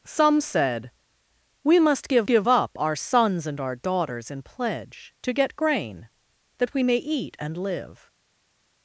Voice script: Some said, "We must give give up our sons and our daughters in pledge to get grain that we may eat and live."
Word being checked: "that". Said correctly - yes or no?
yes